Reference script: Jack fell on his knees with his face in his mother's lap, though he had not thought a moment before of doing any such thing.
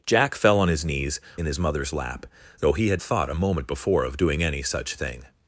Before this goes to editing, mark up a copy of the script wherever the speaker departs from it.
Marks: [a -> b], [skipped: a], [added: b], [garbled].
Jack fell on his knees [skipped: with his face] in his mother's lap, though he had [skipped: not] thought a moment before of doing any such thing.